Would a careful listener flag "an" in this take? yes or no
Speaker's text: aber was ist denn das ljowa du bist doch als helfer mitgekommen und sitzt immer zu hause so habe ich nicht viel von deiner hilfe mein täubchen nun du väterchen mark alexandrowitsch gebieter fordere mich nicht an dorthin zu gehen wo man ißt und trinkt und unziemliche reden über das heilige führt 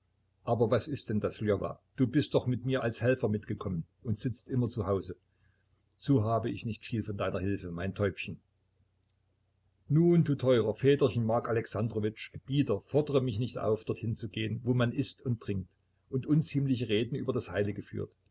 yes